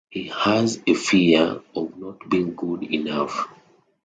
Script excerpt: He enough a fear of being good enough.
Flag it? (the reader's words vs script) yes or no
yes